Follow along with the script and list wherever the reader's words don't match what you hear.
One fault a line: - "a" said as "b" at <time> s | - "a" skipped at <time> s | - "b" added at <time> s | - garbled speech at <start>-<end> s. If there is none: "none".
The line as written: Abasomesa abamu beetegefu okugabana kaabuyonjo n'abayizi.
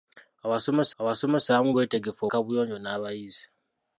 - "abasomesa" added at 1.0 s
- "okugabana" skipped at 2.2 s